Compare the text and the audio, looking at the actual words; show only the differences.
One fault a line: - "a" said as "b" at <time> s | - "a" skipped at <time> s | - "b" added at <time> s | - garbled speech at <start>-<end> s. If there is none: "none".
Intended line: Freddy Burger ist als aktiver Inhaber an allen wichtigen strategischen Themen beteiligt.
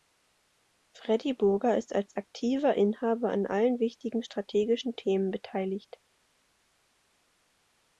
none